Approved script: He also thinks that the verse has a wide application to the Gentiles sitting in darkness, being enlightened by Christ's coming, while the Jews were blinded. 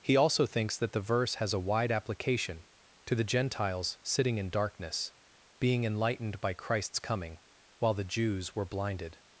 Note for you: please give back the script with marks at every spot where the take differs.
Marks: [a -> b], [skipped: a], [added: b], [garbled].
He also thinks that the verse has a wide application to the Gentiles sitting in darkness, being enlightened by Christ's coming, while the Jews were blinded.